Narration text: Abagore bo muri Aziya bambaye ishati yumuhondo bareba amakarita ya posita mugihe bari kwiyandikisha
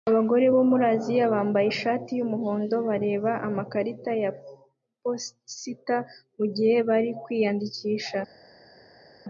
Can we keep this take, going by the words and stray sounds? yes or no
yes